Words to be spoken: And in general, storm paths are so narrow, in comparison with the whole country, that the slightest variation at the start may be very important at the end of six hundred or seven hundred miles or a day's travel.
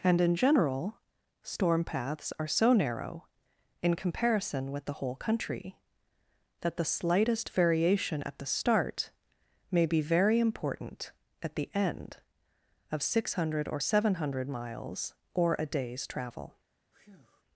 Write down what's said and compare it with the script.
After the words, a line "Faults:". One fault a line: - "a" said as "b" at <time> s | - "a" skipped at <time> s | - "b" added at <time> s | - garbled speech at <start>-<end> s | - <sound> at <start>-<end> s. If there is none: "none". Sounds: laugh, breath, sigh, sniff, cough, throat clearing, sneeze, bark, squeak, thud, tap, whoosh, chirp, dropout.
And in general, storm paths are so narrow, in comparison with the whole country, that the slightest variation at the start may be very important at the end of six hundred or seven hundred miles or a day's travel.
Faults:
- breath at 16.9-17.4 s